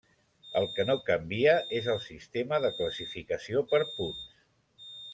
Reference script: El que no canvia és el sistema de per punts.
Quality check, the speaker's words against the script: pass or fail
fail